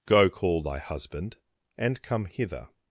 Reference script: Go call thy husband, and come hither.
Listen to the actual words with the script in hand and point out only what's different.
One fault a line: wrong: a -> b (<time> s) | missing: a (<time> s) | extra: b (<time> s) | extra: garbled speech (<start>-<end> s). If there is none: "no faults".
no faults